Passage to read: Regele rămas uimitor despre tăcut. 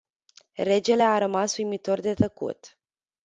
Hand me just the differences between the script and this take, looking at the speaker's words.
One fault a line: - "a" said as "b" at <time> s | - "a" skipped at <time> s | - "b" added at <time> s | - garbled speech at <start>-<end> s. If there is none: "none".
- "a" added at 1.0 s
- "despre" said as "de" at 2.0 s